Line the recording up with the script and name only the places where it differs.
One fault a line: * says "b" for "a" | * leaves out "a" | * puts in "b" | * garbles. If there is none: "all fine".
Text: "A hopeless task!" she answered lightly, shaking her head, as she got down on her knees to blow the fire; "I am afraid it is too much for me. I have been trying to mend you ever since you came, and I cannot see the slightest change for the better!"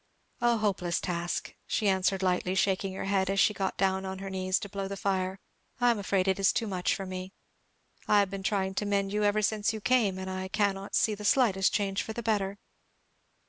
all fine